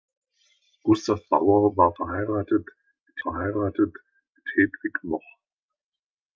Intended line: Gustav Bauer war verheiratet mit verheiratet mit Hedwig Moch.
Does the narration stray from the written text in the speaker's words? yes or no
no